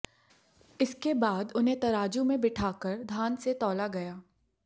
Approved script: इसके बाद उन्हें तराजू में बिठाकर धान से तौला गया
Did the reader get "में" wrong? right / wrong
right